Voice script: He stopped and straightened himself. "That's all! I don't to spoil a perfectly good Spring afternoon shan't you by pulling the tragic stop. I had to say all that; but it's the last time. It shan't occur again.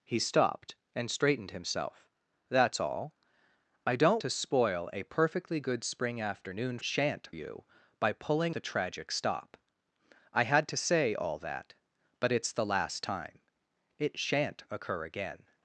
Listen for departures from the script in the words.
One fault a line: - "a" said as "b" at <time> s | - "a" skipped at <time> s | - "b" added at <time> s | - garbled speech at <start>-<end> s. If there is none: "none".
none